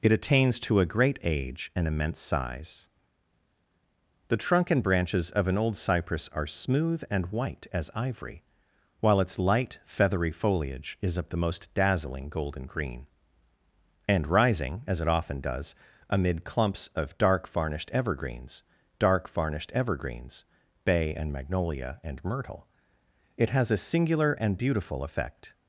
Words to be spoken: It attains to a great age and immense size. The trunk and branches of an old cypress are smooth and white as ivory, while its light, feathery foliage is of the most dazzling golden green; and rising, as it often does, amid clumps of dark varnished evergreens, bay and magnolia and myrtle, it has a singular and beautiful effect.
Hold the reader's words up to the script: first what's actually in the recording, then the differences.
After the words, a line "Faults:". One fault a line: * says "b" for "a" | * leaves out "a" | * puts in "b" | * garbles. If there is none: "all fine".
It attains to a great age and immense size. The trunk and branches of an old cypress are smooth and white as ivory, while its light, feathery foliage is of the most dazzling golden green; and rising, as it often does, amid clumps of dark varnished evergreens dark varnished evergreens, bay and magnolia and myrtle, it has a singular and beautiful effect.
Faults:
* puts in "dark varnished evergreens"